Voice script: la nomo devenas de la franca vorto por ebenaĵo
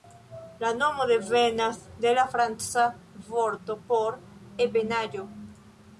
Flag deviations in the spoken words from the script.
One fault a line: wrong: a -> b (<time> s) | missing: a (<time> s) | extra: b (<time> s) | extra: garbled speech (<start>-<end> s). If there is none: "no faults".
no faults